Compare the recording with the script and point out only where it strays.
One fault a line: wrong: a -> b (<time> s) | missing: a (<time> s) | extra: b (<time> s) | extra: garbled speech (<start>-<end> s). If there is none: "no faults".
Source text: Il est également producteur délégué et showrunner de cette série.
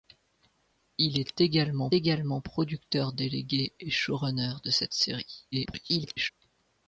extra: également (1.9 s)
extra: garbled speech (5.5-6.3 s)